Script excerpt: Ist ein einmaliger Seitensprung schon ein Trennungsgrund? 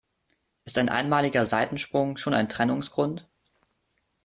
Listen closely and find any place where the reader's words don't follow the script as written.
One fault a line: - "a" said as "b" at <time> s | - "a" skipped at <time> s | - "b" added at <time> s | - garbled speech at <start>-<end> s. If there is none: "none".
none